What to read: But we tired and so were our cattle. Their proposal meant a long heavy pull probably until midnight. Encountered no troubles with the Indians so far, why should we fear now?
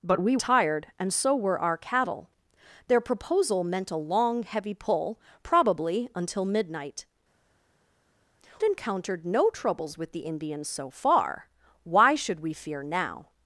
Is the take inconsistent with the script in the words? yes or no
no